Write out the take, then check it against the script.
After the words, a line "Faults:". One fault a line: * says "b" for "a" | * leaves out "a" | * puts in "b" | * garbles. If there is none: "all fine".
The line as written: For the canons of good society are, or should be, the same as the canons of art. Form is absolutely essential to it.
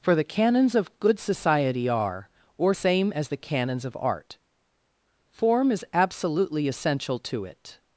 For the canons of good society are, or same as the canons of art. Form is absolutely essential to it.
Faults:
* leaves out "should be the"